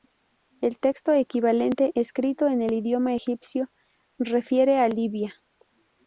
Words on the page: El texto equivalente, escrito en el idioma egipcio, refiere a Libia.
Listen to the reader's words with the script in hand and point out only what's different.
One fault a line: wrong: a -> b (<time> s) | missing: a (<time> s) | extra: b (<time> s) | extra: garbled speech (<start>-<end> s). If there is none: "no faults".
no faults